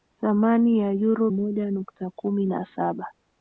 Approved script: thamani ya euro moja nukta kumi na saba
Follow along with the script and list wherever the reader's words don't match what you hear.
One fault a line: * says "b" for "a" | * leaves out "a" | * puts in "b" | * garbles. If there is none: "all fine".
all fine